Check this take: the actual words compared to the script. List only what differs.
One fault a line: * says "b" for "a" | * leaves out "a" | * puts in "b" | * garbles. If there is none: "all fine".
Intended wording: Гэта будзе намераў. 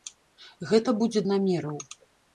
all fine